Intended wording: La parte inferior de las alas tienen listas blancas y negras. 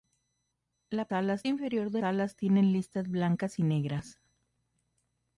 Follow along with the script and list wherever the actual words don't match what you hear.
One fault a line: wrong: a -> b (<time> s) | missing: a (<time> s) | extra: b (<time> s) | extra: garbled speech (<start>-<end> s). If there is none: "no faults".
wrong: parte -> alas (1.1 s)
missing: las (2.0 s)